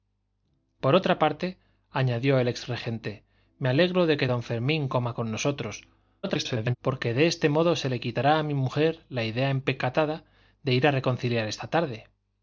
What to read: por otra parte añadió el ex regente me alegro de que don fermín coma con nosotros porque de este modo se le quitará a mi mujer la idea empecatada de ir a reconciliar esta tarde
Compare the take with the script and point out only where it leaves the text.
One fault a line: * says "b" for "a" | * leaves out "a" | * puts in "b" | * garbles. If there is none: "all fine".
* garbles